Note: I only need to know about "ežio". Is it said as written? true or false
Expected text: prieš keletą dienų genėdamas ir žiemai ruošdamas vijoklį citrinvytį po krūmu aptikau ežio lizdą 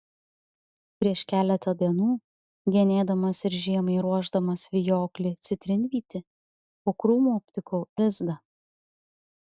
false